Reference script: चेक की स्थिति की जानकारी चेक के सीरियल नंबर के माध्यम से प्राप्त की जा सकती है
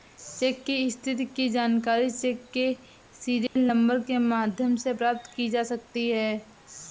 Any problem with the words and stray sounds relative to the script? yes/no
yes